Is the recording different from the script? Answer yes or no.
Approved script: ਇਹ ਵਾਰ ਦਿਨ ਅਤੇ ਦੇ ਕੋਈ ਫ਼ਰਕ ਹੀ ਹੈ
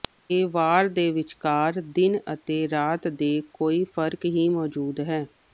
yes